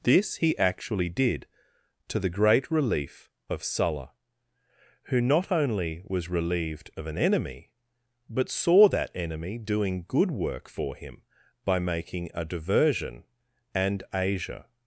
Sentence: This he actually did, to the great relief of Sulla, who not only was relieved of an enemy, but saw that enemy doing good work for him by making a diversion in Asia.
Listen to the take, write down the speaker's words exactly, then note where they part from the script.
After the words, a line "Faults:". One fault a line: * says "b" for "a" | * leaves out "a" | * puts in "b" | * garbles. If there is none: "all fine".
This he actually did, to the great relief of Sulla, who not only was relieved of an enemy, but saw that enemy doing good work for him by making a diversion and Asia.
Faults:
* says "and" for "in"